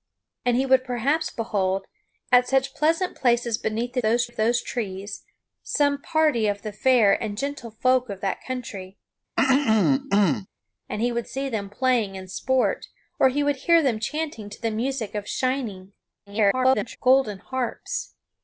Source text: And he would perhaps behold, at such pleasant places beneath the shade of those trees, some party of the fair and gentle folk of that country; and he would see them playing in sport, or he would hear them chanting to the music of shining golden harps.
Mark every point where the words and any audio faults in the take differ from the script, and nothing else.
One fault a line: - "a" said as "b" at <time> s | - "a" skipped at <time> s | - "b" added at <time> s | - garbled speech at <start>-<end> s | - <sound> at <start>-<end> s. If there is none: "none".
- "shade" said as "those" at 4.0 s
- throat clearing at 9.4-10.5 s
- garbled speech at 16.3-17.0 s